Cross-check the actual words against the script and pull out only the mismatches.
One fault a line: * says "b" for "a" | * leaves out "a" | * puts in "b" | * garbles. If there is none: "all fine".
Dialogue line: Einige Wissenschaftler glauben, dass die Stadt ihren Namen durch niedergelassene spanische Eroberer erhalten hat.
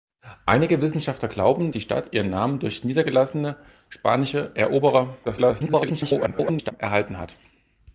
* leaves out "dass"
* garbles